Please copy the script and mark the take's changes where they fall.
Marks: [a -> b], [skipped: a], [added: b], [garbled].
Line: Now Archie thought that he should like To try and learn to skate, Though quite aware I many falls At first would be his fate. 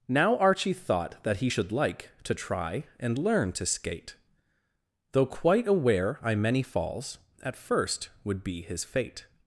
Now Archie thought that he should like To try and learn to skate, Though quite aware I many falls At first would be his fate.